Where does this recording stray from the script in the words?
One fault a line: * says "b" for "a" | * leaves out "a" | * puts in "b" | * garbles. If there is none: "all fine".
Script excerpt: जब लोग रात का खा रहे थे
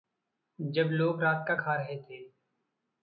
all fine